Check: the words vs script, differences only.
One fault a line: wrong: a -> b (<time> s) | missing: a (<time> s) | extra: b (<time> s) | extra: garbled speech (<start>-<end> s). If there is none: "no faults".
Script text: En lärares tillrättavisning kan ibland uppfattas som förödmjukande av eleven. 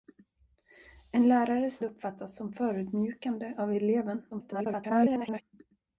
missing: tillrättavisning kan ibland (1.8 s)
extra: garbled speech (4.3-5.4 s)